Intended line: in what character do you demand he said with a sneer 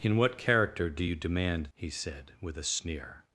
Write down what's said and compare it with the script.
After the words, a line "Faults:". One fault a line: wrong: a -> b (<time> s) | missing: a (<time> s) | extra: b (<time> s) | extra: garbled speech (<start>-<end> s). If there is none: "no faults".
in what character do you demand he said with a sneer
Faults:
no faults